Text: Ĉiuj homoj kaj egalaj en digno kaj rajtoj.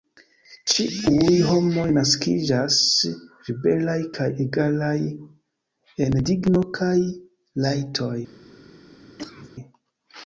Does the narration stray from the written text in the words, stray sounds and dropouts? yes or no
yes